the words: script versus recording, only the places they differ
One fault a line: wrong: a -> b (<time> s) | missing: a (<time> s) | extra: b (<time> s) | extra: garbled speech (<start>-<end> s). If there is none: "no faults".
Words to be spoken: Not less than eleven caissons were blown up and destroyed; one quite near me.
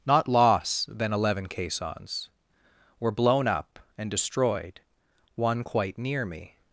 wrong: less -> loss (0.3 s)